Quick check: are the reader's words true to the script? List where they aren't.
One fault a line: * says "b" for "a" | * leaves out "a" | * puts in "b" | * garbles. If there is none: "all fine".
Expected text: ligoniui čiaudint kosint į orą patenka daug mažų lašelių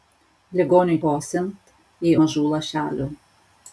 * leaves out "čiaudint"
* leaves out "orą patenka daug"